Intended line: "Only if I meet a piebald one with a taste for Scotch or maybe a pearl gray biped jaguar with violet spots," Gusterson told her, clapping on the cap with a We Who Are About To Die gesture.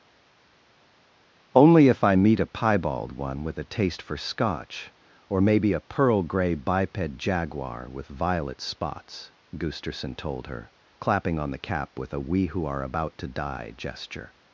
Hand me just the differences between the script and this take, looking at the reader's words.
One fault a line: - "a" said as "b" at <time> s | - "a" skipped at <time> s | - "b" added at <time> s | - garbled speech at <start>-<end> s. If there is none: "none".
none